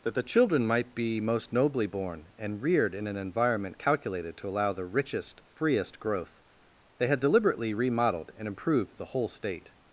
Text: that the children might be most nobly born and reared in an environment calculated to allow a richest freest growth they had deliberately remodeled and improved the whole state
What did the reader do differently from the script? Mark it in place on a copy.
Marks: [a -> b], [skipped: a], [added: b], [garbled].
that the children might be most nobly born and reared in an environment calculated to allow [a -> the] richest freest growth they had deliberately remodeled and improved the whole state